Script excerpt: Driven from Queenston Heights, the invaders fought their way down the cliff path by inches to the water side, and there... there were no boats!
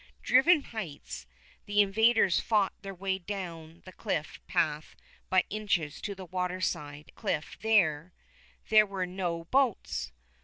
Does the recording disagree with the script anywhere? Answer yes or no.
yes